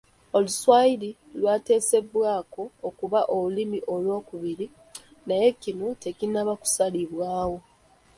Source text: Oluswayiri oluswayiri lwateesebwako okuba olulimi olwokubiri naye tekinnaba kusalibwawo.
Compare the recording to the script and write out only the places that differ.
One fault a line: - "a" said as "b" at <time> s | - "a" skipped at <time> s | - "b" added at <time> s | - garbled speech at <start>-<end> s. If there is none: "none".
- "oluswayiri" skipped at 1.1 s
- "kino" added at 5.6 s